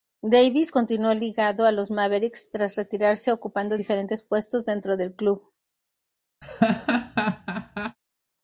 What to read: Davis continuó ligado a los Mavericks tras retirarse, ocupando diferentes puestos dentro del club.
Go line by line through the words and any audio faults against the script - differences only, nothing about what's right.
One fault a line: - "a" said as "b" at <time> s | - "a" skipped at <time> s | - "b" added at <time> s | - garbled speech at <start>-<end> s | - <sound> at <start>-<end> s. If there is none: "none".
- laugh at 6.4-8.0 s